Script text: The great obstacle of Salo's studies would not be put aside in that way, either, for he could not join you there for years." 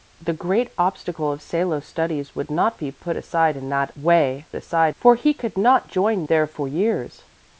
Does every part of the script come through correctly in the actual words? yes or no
no